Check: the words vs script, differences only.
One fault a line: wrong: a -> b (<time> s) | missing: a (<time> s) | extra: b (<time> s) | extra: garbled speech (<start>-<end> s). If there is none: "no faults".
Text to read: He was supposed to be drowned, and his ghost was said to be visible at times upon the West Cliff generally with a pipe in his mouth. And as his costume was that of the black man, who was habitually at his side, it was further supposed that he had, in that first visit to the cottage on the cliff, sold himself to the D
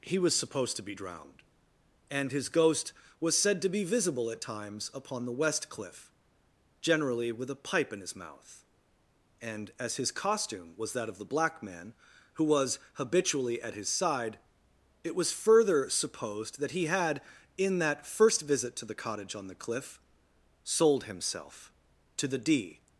no faults